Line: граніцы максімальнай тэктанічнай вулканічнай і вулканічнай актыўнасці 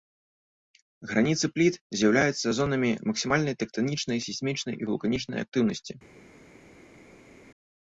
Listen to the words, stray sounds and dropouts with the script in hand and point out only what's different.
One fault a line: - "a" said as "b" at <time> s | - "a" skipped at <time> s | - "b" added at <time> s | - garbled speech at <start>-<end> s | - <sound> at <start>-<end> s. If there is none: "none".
- "пліт з'яўляюцца зонамі" added at 1.6 s
- "вулканічнай" said as "сейсмічнай" at 4.3 s